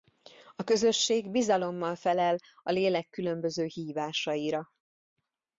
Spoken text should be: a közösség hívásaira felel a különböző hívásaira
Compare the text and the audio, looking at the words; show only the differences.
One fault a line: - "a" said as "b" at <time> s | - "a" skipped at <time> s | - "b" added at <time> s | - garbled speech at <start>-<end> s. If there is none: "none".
- "hívásaira" said as "bizalommal" at 1.3 s
- "lélek" added at 2.7 s